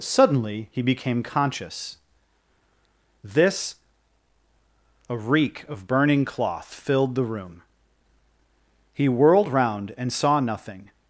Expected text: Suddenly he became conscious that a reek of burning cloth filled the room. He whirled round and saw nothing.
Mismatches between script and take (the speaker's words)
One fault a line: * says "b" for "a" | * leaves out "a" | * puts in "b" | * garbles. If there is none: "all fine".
* says "this" for "that"